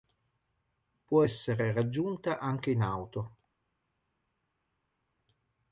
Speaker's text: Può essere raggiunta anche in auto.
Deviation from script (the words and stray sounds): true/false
false